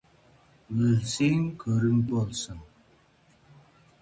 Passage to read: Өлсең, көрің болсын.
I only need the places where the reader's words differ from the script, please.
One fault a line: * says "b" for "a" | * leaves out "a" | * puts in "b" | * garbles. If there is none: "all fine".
all fine